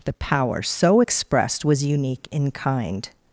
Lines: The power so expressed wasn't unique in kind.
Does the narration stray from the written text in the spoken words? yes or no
yes